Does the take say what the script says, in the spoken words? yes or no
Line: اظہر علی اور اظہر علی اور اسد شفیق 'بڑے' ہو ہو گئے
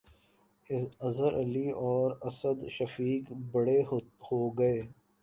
no